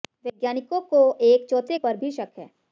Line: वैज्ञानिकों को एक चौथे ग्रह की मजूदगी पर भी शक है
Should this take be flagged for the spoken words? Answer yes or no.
yes